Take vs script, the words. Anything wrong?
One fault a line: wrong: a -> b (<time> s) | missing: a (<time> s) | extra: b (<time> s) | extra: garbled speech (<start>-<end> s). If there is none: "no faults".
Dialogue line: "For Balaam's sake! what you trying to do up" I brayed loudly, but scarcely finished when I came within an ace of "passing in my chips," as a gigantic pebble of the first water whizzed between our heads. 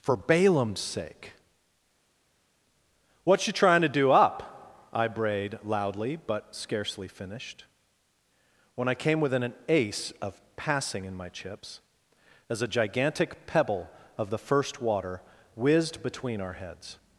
no faults